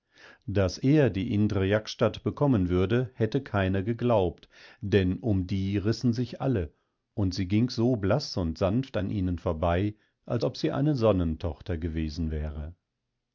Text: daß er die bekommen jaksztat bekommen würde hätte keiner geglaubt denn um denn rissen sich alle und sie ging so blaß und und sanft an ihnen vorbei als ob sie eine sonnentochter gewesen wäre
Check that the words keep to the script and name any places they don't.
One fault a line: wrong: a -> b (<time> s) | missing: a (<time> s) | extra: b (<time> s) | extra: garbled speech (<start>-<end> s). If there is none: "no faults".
wrong: bekommen -> indre (1.3 s)
wrong: denn -> die (5.4 s)
missing: und (8.6 s)